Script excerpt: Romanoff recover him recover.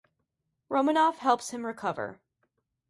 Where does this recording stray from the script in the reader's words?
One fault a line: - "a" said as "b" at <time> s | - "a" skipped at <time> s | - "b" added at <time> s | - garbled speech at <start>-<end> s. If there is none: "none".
- "recover" said as "helps" at 1.2 s